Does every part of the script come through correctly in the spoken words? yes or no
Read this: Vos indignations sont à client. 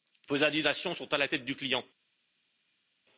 no